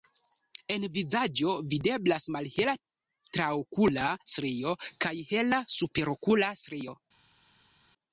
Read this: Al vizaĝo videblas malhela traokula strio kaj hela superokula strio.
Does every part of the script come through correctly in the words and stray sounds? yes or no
no